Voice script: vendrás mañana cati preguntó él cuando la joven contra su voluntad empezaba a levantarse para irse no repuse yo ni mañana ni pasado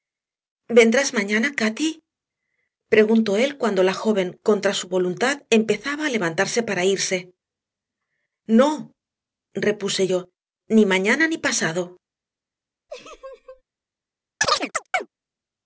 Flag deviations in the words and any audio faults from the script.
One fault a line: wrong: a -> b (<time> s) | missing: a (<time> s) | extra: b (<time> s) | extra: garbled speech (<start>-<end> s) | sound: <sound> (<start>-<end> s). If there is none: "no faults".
sound: laugh (12.9-13.6 s)
sound: chirp (14.4-15.1 s)